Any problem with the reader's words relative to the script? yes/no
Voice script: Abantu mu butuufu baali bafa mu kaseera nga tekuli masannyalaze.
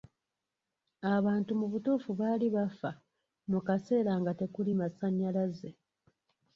no